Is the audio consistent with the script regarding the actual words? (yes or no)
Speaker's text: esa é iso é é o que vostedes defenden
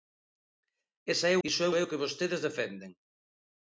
yes